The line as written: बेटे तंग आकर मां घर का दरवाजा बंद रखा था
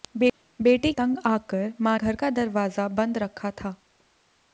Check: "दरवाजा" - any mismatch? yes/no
no